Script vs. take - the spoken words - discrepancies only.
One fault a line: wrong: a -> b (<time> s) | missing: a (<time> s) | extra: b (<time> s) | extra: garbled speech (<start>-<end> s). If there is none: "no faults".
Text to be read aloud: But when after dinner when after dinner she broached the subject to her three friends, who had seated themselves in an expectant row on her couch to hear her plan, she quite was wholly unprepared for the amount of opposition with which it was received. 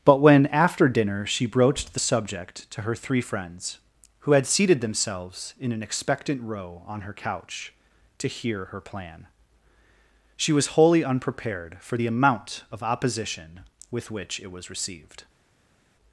missing: when after dinner (1.2 s)
missing: quite (10.5 s)